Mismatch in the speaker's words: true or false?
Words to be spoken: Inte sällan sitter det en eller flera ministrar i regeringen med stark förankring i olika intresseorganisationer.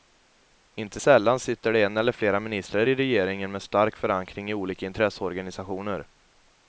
false